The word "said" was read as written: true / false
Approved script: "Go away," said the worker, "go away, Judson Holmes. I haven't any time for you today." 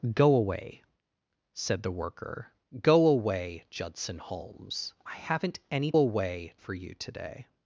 true